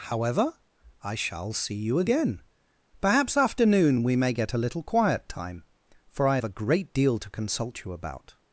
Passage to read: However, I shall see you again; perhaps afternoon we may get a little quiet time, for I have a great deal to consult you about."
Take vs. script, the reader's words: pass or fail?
pass